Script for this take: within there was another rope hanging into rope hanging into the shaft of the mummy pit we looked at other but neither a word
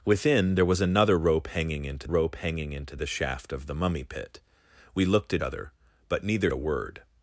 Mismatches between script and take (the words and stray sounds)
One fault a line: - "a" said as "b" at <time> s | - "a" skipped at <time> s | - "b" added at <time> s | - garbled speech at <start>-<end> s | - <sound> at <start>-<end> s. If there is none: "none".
none